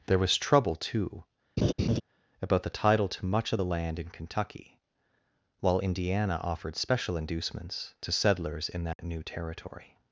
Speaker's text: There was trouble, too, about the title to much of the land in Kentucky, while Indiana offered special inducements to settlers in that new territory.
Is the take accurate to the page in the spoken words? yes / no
yes